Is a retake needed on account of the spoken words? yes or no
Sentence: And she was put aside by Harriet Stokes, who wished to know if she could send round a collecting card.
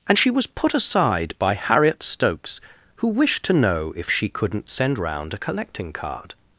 yes